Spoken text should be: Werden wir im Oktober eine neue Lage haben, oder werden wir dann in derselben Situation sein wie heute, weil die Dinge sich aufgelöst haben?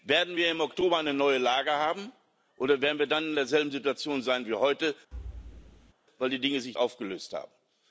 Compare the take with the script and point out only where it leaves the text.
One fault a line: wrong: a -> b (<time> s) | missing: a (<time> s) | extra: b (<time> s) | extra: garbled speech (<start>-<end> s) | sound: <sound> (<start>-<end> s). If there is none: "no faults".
sound: thud (5.1-5.9 s)